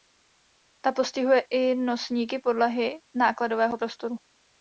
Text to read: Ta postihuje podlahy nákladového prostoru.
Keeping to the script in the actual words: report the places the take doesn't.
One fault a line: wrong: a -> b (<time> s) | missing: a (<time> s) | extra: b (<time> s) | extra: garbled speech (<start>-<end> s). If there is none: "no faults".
extra: i nosníky (1.5 s)